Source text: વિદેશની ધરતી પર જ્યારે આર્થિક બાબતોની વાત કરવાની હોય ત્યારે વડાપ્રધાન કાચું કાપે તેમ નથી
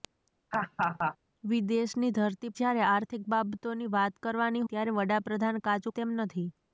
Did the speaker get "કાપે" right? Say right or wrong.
wrong